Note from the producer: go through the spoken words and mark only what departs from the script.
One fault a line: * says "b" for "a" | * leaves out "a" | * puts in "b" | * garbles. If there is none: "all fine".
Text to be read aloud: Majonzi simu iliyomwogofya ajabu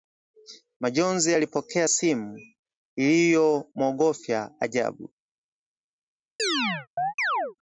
* puts in "alipokea"